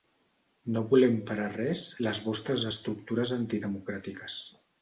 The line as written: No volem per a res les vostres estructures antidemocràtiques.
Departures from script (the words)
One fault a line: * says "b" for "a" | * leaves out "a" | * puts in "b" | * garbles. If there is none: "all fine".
all fine